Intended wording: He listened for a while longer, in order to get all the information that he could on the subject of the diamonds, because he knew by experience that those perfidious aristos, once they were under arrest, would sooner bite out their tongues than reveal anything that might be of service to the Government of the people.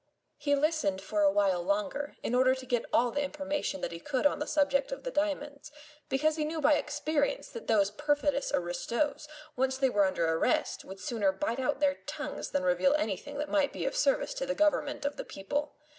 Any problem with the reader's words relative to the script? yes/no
no